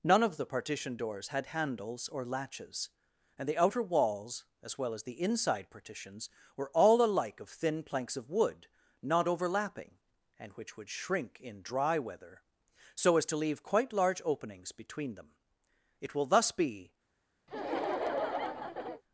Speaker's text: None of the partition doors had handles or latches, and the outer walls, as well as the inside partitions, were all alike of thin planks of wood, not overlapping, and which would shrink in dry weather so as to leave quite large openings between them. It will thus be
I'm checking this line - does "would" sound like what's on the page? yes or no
yes